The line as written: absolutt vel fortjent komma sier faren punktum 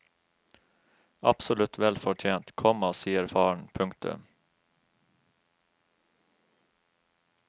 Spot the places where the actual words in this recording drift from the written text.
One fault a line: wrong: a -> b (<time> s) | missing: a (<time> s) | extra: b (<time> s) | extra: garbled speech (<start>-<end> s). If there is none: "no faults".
no faults